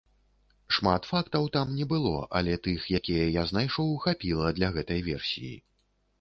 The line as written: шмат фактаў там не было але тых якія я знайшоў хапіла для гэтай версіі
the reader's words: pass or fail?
pass